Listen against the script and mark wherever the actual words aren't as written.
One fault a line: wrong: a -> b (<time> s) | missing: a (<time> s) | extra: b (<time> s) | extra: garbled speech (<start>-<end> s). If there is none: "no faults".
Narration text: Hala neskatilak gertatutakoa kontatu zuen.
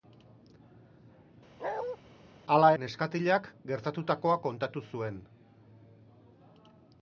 no faults